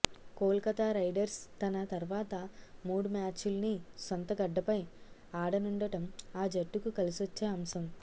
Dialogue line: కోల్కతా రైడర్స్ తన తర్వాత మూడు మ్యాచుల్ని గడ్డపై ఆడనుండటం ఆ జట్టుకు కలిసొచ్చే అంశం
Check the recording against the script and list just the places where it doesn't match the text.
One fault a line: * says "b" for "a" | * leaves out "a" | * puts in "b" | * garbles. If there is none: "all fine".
* puts in "సొంత"